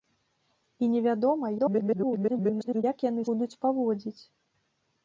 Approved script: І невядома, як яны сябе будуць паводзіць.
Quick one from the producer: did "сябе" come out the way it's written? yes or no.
no